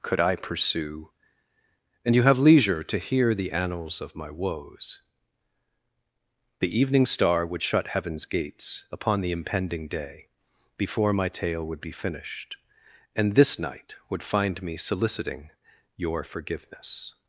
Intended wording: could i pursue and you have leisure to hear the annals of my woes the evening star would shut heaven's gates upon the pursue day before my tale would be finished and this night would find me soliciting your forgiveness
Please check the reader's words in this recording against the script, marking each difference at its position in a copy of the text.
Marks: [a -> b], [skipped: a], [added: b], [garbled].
could i pursue and you have leisure to hear the annals of my woes the evening star would shut heaven's gates upon the [pursue -> impending] day before my tale would be finished and this night would find me soliciting your forgiveness